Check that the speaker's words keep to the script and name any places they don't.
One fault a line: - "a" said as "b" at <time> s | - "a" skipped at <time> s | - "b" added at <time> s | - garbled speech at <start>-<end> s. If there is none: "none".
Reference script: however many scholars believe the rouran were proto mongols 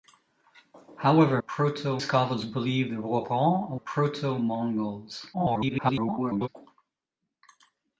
- "many" said as "proto" at 1.4 s
- "were" skipped at 3.8 s
- garbled speech at 5.3-6.5 s